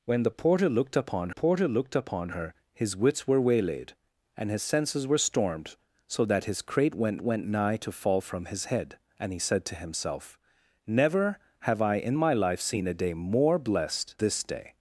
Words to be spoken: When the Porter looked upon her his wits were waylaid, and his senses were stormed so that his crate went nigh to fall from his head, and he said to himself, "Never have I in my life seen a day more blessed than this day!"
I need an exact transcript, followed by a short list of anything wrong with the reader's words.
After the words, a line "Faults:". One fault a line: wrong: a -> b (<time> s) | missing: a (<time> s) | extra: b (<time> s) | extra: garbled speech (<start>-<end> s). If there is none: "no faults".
When the Porter looked upon Porter looked upon her his wits were waylaid, and his senses were stormed so that his crate went went nigh to fall from his head, and he said to himself, "Never have I in my life seen a day more blessed this day!"
Faults:
extra: Porter looked upon (1.3 s)
extra: went (7.2 s)
missing: than (14.1 s)